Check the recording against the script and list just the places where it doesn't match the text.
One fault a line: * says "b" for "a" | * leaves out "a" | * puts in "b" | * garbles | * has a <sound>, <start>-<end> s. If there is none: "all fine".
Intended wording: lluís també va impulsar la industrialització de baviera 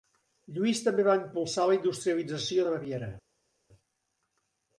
all fine